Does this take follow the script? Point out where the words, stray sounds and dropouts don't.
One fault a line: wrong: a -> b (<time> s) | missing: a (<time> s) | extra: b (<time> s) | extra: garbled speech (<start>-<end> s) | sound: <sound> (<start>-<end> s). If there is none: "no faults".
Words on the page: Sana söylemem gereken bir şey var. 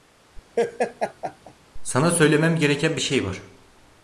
sound: laugh (0.6-1.5 s)